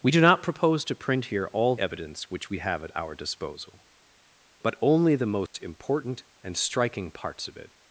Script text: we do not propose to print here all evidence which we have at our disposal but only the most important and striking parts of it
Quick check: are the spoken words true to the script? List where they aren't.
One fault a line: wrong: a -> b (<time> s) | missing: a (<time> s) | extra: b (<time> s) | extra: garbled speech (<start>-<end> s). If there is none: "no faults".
no faults